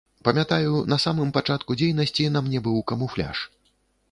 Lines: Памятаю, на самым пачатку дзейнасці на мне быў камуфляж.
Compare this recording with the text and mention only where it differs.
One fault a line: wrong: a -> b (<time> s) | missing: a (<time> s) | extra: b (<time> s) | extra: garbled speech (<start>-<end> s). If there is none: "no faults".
no faults